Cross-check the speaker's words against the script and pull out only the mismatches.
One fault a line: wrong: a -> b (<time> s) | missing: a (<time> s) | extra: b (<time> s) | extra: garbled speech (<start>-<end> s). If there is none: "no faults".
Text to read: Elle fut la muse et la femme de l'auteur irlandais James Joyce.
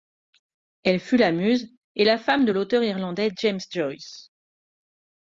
no faults